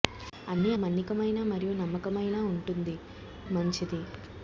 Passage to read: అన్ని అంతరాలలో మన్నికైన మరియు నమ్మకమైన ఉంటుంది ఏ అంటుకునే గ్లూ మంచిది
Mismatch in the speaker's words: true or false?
true